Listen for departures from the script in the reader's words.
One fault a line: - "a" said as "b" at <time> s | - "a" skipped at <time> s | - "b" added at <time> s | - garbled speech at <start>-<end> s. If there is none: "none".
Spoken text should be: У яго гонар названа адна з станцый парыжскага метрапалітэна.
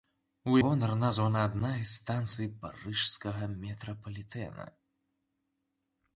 - "яго" skipped at 0.6 s